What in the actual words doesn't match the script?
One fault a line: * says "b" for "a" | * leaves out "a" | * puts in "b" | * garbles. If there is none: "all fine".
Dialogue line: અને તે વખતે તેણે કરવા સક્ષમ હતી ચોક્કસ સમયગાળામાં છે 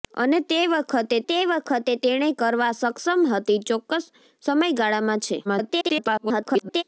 * puts in "તે વખતે"
* garbles